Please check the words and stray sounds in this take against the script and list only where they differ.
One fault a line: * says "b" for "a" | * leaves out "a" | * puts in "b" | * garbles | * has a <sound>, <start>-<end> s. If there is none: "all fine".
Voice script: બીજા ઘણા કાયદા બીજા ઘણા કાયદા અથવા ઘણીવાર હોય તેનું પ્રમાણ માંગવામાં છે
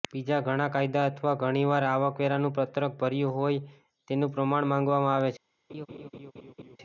* says "અથવા ઘણીવાર આવકવેરાનું પત્રક ભર્યું" for "બીજા ઘણા કાયદા અથવા ઘણીવાર"
* puts in "આવે"
* has a laugh, 5.7-6.8 s